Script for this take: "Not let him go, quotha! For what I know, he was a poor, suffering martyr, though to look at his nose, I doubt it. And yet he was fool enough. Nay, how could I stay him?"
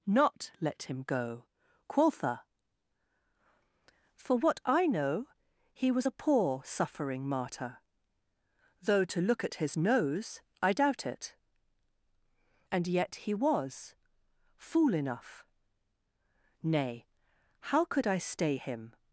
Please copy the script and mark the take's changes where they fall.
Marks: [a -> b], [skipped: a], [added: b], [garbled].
"Not let him go, quotha! For what I know, he was a poor, suffering martyr, though to look at his nose, I doubt it. And yet he was fool enough. Nay, how could I stay him?"